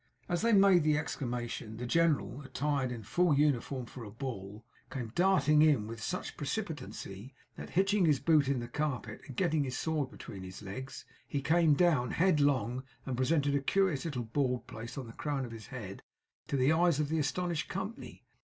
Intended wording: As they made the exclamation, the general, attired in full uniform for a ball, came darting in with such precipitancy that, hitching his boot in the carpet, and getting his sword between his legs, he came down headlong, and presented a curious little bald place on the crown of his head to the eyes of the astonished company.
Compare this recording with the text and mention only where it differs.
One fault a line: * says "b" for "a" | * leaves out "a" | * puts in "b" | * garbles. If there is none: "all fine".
all fine